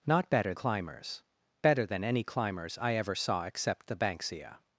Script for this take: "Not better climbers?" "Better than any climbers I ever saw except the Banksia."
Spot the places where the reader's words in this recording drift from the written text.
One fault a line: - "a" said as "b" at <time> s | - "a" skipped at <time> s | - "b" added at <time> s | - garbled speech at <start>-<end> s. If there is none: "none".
none